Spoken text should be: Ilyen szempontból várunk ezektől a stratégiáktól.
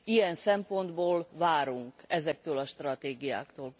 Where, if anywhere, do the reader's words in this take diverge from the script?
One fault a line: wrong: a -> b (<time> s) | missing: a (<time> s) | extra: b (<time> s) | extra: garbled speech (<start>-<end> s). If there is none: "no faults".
no faults